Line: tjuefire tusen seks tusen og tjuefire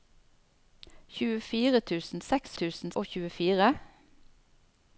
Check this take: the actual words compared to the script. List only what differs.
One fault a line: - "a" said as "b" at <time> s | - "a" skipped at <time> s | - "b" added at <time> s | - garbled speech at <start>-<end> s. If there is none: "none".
none